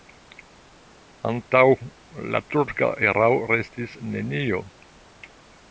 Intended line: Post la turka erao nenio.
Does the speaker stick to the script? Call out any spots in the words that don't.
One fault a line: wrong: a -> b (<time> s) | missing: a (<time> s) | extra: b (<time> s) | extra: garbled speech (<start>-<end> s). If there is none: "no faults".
wrong: Post -> Antaŭ (1.3 s)
extra: restis (3.5 s)